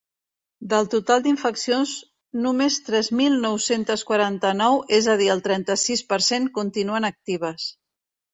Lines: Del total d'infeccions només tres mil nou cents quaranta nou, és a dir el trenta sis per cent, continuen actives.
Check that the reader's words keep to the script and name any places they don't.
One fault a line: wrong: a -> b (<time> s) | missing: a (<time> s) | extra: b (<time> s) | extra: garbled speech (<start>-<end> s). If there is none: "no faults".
no faults